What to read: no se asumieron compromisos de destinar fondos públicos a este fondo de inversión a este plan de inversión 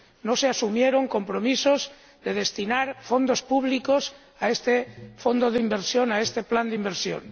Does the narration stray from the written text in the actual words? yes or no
no